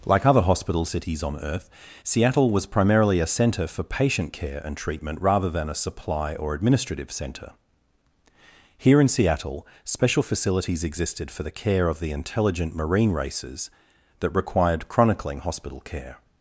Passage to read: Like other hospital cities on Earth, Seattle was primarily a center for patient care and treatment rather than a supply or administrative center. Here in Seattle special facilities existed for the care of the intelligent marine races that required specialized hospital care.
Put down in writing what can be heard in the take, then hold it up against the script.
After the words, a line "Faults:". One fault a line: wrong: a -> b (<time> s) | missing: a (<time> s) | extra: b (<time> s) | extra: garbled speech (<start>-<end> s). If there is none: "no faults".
Like other hospital cities on Earth, Seattle was primarily a center for patient care and treatment rather than a supply or administrative center. Here in Seattle special facilities existed for the care of the intelligent marine races that required chronicling hospital care.
Faults:
wrong: specialized -> chronicling (14.9 s)